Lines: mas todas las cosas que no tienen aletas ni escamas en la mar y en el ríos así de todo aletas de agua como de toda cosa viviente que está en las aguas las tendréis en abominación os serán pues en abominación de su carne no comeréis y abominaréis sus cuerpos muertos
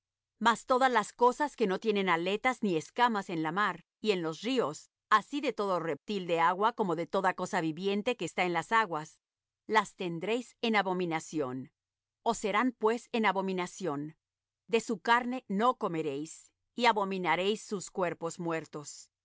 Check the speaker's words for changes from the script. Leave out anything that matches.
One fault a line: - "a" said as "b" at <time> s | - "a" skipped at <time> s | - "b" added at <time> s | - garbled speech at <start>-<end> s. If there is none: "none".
- "el" said as "los" at 4.2 s
- "aletas" said as "reptil" at 5.8 s